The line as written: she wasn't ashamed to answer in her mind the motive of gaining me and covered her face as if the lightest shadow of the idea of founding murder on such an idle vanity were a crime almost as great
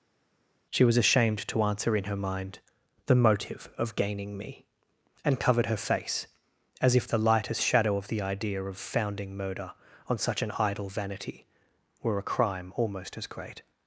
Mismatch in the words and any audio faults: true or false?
true